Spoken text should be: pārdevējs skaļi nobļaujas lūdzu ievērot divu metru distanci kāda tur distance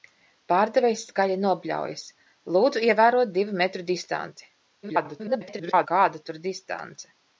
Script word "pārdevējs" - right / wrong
right